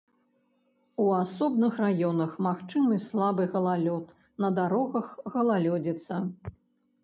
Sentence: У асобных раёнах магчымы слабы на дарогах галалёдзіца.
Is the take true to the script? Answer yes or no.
no